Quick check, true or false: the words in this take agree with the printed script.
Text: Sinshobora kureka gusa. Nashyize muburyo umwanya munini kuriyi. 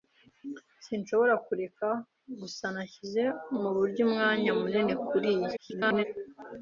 false